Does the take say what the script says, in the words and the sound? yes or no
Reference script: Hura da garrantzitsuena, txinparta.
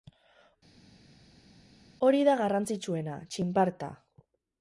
no